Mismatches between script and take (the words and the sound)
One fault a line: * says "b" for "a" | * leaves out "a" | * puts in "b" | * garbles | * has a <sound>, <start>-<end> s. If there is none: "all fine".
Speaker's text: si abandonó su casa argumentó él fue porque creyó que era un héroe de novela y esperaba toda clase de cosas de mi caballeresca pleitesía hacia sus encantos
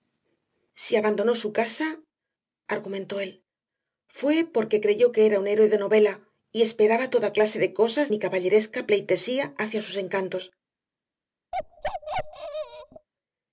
* leaves out "de"
* has a bark, 11.5-13.1 s